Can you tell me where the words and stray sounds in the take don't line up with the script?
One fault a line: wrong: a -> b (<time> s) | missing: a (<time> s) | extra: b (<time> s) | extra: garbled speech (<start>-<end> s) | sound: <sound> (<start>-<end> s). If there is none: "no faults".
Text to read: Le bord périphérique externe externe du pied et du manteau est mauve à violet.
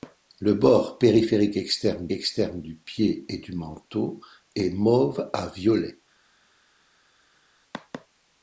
no faults